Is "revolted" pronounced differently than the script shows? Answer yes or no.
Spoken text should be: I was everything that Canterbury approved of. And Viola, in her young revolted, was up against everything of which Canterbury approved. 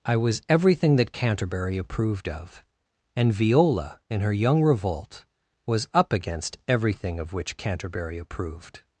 yes